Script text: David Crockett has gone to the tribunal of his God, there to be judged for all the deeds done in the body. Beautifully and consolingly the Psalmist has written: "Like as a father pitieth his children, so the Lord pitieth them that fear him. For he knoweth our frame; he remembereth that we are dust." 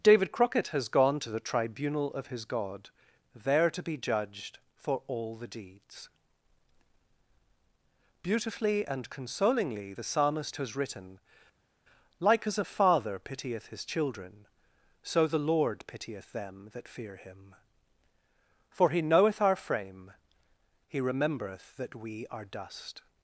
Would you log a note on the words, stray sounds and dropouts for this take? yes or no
yes